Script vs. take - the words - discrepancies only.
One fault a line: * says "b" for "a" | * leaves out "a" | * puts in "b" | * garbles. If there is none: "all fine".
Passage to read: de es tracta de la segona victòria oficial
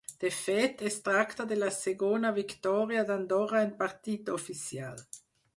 * puts in "fet"
* puts in "d'andorra en partit"